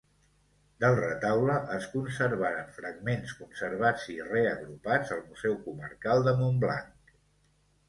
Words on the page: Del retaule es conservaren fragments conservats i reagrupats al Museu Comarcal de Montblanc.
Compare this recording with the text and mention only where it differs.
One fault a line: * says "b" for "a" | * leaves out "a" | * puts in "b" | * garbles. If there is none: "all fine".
all fine